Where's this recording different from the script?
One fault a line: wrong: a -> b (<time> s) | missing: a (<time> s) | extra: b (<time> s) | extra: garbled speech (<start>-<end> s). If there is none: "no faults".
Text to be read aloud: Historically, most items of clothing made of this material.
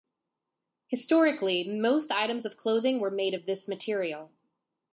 extra: were (3.0 s)